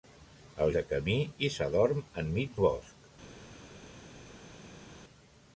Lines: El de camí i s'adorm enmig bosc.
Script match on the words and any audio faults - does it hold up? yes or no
yes